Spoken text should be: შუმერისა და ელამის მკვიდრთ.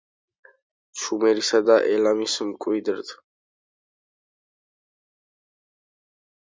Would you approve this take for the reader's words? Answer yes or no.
yes